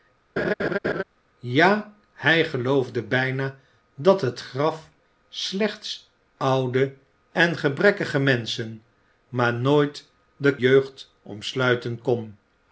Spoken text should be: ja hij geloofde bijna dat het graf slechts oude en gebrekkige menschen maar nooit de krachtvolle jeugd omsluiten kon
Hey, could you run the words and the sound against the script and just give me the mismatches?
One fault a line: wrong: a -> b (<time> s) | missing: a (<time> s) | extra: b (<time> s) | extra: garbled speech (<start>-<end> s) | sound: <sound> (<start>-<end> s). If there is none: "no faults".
sound: laugh (0.4-1.0 s)
missing: krachtvolle (10.6 s)